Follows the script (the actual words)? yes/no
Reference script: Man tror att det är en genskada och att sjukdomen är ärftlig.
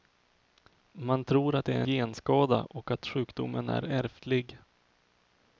no